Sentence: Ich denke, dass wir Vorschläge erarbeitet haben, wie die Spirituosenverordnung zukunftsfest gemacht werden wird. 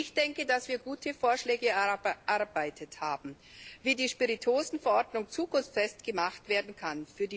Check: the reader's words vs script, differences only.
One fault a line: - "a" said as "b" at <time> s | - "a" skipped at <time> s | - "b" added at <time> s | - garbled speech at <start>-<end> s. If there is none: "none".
- "gute" added at 0.8 s
- "wird" said as "kann" at 6.7 s